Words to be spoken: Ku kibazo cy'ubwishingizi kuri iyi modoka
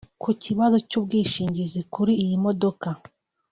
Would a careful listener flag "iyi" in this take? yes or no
no